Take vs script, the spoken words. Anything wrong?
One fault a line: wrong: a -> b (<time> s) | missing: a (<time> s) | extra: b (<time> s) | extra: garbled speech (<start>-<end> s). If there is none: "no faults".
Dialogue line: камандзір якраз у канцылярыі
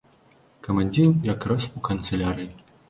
no faults